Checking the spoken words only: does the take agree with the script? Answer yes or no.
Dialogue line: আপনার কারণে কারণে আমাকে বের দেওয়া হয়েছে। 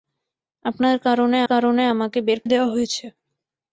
yes